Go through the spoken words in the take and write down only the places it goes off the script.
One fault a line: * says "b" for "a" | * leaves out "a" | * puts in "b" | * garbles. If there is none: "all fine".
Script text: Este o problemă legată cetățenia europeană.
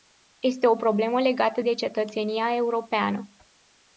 * puts in "de"